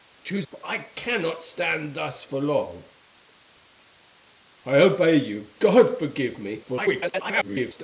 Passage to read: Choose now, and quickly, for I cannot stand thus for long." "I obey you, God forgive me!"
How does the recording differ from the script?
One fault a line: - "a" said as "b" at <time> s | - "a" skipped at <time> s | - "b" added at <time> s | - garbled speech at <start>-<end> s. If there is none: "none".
- "now and quickly" skipped at 0.5 s
- garbled speech at 6.6-7.8 s